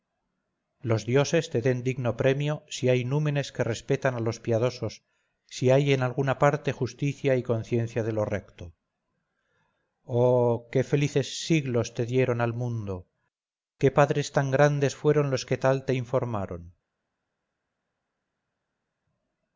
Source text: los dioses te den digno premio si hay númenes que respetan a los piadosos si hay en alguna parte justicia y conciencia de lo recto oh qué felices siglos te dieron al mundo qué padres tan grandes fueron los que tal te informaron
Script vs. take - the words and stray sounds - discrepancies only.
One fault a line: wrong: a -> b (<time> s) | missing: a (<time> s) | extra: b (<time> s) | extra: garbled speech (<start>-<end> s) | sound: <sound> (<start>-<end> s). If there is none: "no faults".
no faults